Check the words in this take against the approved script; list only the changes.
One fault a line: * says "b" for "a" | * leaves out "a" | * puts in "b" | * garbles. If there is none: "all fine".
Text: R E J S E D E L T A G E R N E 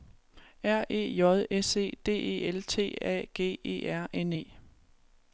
all fine